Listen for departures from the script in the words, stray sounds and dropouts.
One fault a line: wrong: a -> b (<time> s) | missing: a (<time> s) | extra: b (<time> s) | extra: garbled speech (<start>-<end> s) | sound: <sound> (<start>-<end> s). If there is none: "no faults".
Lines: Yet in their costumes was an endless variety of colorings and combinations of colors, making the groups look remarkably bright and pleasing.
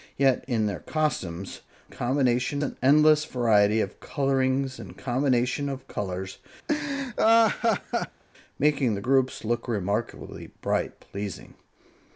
wrong: was -> combinations (1.9 s)
sound: laugh (6.7-8.2 s)
missing: and (10.9 s)